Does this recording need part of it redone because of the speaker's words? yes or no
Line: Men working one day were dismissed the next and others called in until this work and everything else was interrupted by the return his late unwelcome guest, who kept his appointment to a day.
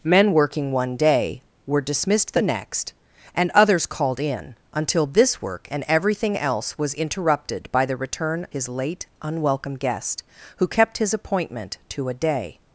no